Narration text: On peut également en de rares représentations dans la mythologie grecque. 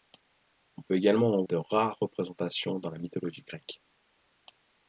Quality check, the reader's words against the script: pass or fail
pass